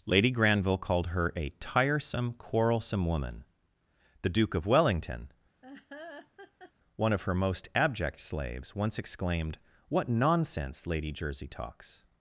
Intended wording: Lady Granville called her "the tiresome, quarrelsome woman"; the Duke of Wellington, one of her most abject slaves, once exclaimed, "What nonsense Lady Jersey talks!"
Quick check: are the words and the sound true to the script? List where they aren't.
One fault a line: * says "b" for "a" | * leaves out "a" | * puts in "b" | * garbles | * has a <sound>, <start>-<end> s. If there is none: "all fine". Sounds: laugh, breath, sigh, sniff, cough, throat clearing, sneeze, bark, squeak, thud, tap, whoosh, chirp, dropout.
* says "a" for "the"
* has a laugh, 5.6-6.7 s